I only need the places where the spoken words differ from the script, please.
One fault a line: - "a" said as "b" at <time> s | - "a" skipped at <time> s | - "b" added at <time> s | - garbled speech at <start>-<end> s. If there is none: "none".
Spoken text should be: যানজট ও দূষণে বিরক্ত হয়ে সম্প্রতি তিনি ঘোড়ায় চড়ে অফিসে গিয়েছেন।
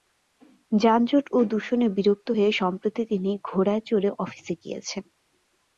none